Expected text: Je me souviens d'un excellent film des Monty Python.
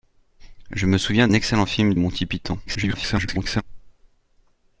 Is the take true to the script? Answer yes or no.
no